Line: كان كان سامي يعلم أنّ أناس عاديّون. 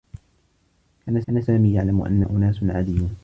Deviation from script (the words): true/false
false